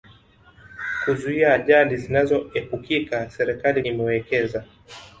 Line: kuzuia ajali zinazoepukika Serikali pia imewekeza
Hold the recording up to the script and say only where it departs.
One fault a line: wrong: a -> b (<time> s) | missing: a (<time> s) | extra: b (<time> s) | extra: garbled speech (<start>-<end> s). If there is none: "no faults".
missing: pia (3.8 s)